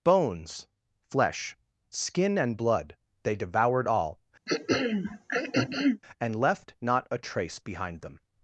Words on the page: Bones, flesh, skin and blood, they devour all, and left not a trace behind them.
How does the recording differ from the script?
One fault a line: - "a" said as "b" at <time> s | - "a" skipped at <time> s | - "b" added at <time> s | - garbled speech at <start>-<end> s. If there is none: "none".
- "devour" said as "devoured" at 3.4 s